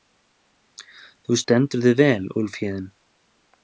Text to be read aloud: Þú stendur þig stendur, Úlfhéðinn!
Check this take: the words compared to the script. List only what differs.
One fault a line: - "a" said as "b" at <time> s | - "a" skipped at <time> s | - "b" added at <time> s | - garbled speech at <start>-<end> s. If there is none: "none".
- "stendur" said as "vel" at 2.0 s